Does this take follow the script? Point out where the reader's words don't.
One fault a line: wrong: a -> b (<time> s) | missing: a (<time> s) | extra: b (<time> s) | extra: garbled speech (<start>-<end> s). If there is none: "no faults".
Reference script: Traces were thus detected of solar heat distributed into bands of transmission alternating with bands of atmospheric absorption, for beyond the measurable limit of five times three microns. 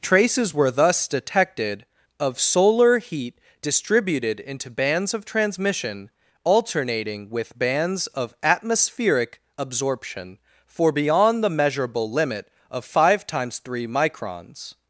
no faults